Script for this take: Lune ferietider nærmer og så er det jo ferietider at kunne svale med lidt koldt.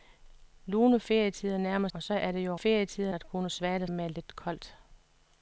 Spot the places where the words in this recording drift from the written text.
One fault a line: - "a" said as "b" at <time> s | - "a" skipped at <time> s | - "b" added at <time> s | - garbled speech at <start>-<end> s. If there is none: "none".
none